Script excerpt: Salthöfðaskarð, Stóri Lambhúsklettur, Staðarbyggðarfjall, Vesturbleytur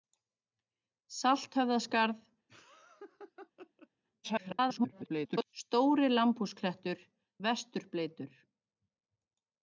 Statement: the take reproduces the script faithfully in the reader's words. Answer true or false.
false